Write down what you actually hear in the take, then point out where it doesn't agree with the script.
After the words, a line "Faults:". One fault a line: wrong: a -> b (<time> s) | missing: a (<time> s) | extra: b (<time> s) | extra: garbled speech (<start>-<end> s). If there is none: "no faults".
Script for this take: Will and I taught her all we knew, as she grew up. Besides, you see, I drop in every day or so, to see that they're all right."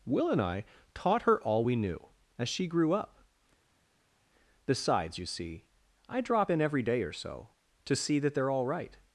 Will and I taught her all we knew, as she grew up. Besides, you see, I drop in every day or so, to see that they're all right."
Faults:
no faults